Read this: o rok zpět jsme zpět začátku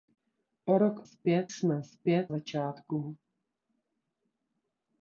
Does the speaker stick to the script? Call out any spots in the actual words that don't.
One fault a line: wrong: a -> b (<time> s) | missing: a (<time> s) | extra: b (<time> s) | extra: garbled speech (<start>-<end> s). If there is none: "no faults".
no faults